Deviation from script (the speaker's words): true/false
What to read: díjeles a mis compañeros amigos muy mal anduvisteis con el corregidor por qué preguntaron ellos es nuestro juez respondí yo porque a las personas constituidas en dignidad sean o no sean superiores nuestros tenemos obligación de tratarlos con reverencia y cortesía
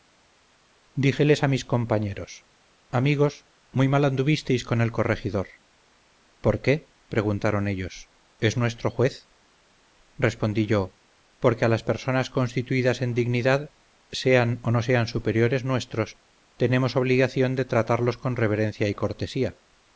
false